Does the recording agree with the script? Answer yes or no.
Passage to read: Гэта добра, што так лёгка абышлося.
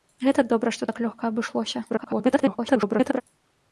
no